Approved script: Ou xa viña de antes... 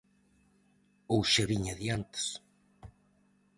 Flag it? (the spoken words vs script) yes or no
no